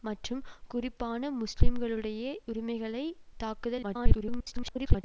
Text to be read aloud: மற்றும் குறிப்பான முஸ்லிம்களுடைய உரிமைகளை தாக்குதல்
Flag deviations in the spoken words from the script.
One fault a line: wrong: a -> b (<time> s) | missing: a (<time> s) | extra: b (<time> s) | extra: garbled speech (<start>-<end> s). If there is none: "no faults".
extra: garbled speech (3.8-5.0 s)